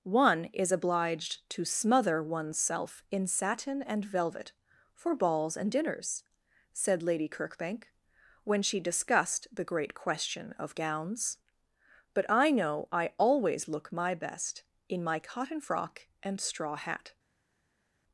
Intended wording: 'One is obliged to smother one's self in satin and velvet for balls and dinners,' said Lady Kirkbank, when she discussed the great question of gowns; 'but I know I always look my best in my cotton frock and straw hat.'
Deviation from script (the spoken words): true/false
false